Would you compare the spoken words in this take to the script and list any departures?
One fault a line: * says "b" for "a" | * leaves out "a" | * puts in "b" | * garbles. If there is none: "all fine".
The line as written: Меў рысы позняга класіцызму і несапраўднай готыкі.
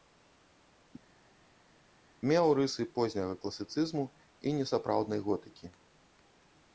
all fine